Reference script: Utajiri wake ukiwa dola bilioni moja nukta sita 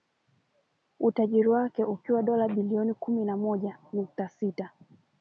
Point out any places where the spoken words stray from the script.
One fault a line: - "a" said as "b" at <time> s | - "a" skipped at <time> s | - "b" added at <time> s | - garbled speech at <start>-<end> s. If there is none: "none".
- "kumi na" added at 2.9 s